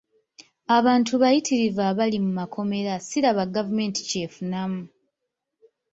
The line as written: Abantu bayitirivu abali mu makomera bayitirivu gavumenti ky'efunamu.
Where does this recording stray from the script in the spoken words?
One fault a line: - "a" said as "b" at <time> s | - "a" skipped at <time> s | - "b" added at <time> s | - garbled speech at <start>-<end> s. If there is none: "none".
- "bayitirivu" said as "siraba" at 3.1 s